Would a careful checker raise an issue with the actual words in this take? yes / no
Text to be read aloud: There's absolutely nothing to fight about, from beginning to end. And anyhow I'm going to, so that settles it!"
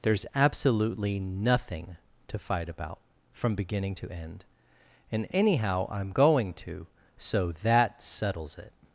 no